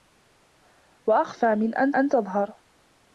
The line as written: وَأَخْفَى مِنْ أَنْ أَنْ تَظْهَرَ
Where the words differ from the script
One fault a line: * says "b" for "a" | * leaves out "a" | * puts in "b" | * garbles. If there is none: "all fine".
all fine